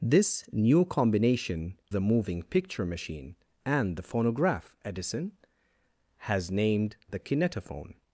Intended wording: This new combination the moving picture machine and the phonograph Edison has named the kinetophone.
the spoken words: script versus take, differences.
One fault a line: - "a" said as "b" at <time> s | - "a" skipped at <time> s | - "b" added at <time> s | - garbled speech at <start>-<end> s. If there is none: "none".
none